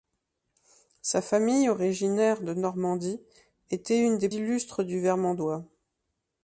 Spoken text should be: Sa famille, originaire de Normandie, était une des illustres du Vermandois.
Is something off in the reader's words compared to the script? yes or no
no